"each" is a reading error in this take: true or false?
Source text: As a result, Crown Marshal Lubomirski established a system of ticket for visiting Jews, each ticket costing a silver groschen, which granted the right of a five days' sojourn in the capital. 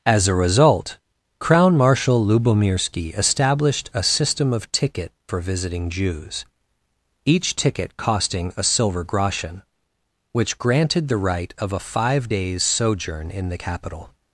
false